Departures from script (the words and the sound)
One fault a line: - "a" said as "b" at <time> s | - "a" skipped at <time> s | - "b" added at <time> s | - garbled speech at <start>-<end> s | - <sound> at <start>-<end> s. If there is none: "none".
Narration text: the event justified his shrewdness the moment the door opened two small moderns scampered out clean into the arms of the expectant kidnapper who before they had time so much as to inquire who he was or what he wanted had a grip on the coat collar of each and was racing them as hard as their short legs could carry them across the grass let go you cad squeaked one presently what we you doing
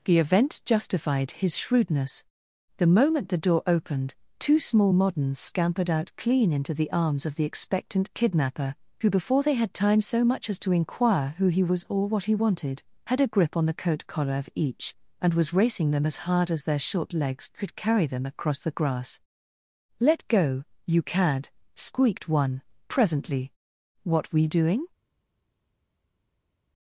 - "you" skipped at 24.5 s